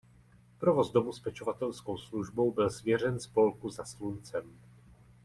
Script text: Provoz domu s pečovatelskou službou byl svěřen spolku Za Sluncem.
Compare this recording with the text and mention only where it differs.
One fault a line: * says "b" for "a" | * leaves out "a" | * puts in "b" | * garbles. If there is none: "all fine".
all fine